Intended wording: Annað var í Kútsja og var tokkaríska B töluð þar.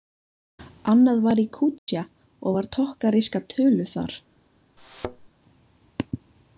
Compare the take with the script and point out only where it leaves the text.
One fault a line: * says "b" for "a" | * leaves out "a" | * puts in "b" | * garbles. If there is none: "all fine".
* leaves out "B"